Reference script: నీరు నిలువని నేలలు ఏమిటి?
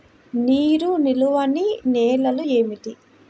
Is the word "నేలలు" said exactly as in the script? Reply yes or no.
yes